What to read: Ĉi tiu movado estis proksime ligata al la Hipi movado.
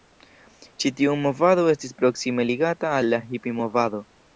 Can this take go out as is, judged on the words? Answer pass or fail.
pass